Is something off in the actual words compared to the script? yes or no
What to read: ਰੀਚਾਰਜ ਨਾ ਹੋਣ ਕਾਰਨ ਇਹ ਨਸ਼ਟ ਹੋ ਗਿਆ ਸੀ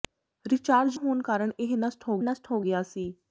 yes